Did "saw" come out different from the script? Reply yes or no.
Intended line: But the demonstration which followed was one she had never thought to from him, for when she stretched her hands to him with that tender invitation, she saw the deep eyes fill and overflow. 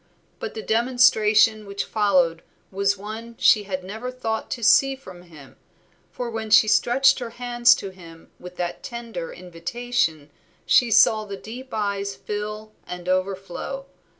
no